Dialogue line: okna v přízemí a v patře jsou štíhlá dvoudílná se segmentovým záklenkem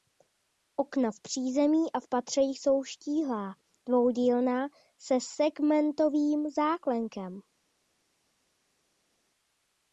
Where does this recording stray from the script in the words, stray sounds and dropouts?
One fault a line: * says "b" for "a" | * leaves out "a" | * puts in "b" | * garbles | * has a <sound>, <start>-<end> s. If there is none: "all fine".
all fine